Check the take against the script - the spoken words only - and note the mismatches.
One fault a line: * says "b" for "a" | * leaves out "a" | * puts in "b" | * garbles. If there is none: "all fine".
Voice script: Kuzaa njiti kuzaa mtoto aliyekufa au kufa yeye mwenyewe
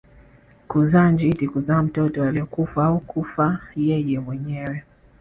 all fine